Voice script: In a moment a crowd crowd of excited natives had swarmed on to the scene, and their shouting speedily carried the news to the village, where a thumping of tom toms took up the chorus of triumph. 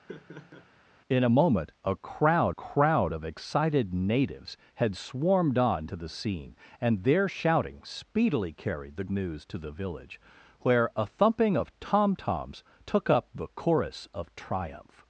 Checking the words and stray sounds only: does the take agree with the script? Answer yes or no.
no